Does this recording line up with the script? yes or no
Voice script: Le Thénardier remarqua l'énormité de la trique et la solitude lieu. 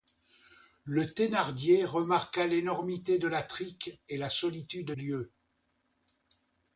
yes